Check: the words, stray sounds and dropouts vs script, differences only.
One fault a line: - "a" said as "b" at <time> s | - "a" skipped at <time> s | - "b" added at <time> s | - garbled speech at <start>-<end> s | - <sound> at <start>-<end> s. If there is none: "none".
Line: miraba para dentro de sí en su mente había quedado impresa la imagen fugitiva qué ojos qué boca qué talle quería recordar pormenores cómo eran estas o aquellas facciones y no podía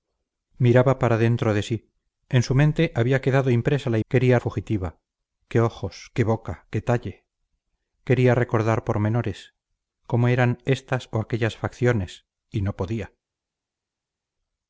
- "imagen" said as "quería" at 4.1 s